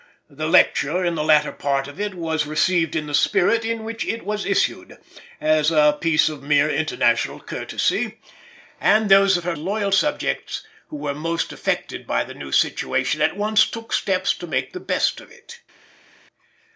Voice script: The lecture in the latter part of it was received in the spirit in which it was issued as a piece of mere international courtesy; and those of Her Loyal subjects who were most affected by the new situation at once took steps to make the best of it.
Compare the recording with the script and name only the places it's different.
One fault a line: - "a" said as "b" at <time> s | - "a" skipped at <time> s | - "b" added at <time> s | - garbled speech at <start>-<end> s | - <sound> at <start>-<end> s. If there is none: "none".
none